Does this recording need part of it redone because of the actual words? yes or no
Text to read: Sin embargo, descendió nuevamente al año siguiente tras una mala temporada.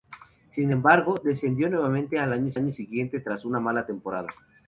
yes